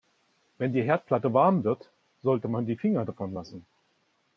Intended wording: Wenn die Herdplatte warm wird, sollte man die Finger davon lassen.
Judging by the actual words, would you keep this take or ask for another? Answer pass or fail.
pass